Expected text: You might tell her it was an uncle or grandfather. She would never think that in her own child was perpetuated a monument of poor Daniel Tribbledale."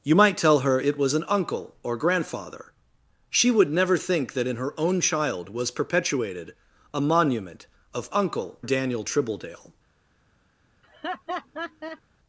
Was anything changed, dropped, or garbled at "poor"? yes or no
yes